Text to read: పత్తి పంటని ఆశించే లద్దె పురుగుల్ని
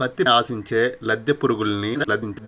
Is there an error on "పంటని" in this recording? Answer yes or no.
yes